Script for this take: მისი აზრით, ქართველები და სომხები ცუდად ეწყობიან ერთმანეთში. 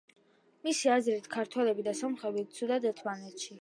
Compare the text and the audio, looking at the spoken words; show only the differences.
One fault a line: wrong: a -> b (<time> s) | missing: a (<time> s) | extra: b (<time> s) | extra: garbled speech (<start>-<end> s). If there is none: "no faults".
missing: ეწყობიან (2.9 s)